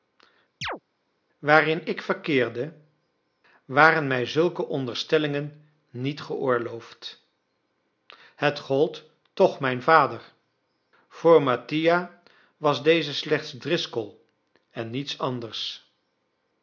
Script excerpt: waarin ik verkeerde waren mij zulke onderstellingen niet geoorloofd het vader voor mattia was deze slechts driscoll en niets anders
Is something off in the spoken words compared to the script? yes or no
yes